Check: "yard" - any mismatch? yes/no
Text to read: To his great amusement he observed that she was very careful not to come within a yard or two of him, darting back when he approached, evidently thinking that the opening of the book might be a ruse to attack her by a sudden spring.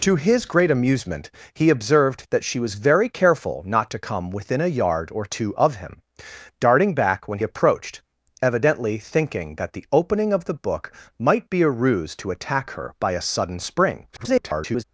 no